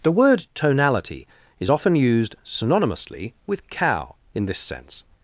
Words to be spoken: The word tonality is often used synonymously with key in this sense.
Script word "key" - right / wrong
wrong